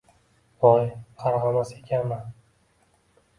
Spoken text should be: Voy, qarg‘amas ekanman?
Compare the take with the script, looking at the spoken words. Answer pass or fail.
pass